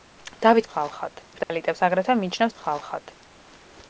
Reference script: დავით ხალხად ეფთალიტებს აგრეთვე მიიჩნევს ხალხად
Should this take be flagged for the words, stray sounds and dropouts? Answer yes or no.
yes